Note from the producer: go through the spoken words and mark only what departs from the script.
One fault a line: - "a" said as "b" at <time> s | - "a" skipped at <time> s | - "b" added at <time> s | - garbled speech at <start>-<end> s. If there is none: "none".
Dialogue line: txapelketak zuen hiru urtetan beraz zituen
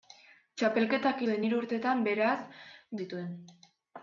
none